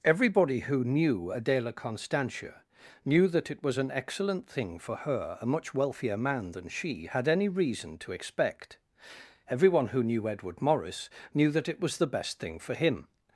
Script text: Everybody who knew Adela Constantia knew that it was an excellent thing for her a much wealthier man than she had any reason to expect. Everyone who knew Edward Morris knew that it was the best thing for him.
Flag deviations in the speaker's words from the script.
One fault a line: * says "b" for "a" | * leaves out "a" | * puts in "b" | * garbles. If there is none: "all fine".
all fine